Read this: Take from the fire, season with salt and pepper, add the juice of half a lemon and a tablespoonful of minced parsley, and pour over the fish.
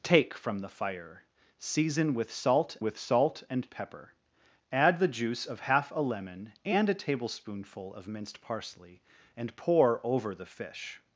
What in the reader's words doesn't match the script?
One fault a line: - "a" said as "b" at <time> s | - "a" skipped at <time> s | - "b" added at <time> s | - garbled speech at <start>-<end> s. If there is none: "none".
- "with salt" added at 2.8 s